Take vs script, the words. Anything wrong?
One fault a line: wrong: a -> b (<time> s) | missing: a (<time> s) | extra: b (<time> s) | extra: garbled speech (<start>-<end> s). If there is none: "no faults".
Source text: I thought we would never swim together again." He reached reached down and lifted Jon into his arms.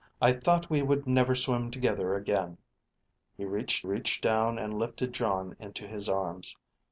no faults